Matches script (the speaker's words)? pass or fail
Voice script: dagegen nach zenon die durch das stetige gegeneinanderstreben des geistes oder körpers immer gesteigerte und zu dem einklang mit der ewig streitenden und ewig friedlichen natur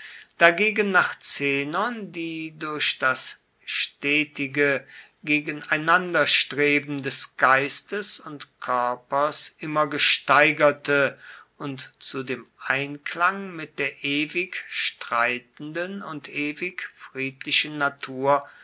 fail